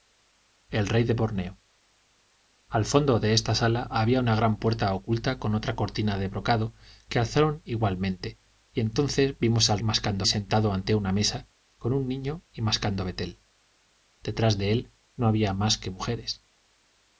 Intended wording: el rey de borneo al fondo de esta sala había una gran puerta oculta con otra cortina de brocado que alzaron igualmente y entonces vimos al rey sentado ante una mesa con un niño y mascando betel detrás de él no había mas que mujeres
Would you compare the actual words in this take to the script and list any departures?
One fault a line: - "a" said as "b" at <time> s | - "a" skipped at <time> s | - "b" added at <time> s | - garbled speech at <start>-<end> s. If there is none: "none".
- "rey" said as "mascando" at 9.8 s